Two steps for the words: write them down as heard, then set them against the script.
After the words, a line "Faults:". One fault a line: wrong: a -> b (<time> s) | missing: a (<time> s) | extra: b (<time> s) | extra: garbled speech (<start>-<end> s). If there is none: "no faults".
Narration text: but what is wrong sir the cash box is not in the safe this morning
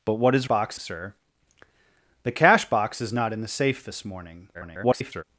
but what is box sir the cash box is not in the safe this morning [garbled]
Faults:
wrong: wrong -> box (0.4 s)
extra: garbled speech (4.5-5.2 s)